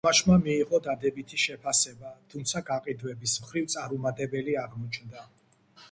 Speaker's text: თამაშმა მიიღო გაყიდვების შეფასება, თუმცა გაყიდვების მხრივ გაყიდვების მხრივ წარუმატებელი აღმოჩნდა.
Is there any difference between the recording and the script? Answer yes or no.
yes